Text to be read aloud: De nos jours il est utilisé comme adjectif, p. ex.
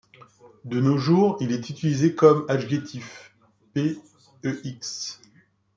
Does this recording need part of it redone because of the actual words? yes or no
no